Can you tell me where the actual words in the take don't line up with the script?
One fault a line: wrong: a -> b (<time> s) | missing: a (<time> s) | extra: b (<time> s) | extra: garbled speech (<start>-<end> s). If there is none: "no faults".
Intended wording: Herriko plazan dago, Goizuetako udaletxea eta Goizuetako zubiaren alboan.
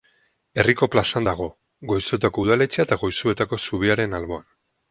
no faults